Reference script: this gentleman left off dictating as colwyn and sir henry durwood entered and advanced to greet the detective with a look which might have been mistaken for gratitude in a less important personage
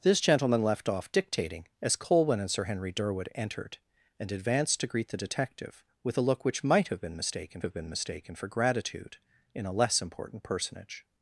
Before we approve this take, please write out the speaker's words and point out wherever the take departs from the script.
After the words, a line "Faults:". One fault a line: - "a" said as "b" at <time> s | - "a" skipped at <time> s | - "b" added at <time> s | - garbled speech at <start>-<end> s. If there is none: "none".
this gentleman left off dictating as colwyn and sir henry durwood entered and advanced to greet the detective with a look which might have been mistaken have been mistaken for gratitude in a less important personage
Faults:
- "have been mistaken" added at 7.6 s